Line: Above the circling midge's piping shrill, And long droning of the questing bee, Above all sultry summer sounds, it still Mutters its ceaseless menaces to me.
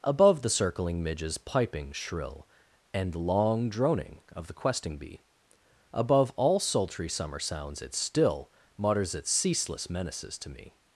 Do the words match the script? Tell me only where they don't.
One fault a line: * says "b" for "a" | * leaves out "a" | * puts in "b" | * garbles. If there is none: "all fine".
all fine